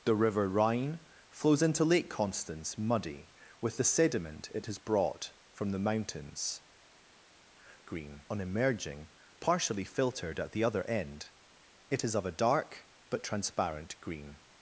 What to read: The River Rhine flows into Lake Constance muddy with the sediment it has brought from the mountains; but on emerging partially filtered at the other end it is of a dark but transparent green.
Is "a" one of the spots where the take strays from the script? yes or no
no